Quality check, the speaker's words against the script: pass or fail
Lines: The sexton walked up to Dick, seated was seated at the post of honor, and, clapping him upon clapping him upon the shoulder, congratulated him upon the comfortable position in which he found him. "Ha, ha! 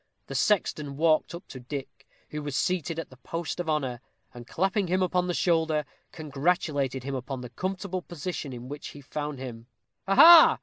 fail